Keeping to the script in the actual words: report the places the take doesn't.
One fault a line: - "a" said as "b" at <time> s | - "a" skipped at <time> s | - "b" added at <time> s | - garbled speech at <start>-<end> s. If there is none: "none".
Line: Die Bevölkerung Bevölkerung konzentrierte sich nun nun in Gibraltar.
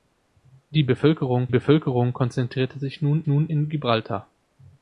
none